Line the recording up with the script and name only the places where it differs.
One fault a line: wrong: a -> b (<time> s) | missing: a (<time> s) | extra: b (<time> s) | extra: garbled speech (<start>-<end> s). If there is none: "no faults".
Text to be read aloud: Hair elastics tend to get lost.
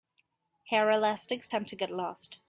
no faults